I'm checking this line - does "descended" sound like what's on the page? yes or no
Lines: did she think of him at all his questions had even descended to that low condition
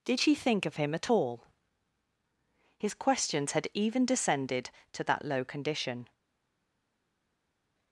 yes